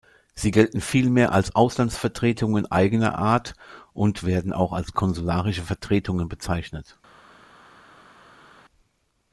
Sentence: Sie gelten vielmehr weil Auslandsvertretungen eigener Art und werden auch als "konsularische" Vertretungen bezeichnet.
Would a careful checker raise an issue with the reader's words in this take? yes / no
yes